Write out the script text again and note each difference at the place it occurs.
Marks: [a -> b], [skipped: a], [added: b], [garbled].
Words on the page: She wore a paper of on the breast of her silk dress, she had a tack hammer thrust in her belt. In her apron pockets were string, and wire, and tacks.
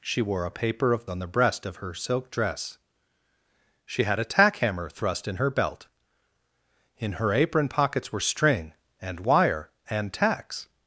She wore a paper of on the breast of her silk dress, she had a tack hammer thrust in her belt. In her apron pockets were string, and wire, and tacks.